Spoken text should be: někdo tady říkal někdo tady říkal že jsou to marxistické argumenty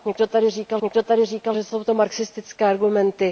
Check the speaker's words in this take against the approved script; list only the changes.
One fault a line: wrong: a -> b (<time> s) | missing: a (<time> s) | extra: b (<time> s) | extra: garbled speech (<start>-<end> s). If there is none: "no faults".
no faults